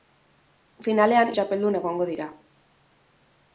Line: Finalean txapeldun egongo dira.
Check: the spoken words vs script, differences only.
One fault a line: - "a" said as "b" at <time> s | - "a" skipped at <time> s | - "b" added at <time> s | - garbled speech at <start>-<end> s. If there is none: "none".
none